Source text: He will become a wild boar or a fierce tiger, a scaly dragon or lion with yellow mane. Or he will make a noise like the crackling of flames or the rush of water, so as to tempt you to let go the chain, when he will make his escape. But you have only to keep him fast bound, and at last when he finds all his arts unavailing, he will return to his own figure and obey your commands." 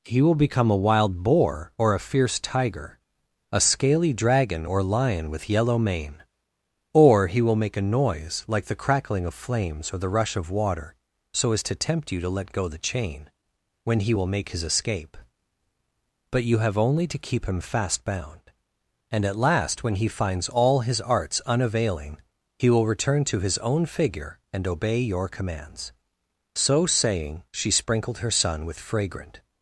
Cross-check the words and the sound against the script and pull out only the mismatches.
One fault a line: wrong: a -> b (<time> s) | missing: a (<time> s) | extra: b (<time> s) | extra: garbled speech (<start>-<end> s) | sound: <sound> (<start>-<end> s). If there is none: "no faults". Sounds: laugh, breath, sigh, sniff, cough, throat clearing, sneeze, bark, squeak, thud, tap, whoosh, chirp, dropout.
extra: So saying she sprinkled her son with fragrant (26.5 s)